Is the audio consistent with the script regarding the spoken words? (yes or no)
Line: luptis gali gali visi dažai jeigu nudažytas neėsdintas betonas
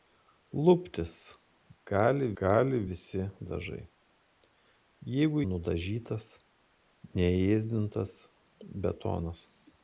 yes